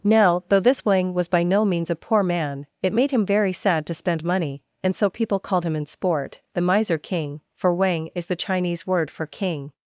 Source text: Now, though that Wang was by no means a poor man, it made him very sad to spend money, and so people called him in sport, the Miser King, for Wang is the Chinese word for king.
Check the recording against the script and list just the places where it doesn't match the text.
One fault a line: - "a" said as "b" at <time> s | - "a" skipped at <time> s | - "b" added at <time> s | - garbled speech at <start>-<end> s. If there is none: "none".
- "that" said as "this" at 0.6 s